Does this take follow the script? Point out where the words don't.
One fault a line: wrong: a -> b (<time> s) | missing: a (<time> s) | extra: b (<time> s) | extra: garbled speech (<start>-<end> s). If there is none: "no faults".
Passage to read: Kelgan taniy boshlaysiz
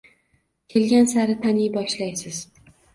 extra: sari (1.1 s)